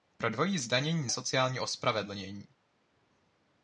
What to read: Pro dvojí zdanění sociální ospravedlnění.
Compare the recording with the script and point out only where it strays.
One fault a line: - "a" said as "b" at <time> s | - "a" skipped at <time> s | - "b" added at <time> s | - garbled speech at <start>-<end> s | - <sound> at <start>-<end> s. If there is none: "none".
none